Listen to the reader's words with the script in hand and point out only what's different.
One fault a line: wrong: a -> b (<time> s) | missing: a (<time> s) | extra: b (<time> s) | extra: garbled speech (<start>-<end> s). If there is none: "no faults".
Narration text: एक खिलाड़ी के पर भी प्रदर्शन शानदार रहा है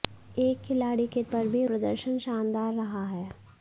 no faults